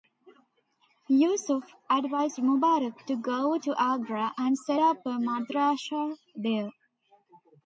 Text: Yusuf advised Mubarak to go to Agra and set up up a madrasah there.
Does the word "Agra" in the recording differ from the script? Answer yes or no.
no